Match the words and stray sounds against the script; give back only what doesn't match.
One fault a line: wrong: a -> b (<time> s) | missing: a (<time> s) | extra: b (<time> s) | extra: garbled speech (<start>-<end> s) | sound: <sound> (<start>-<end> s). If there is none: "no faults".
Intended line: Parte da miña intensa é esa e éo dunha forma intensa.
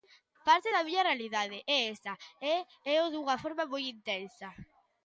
wrong: intensa -> realidade (1.1 s)
extra: moi (3.7 s)